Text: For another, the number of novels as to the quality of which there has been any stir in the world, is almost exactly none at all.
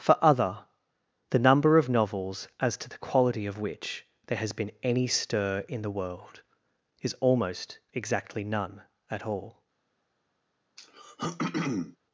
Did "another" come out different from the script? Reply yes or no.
yes